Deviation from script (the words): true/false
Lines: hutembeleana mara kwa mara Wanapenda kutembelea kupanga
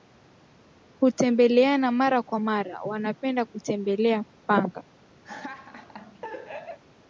false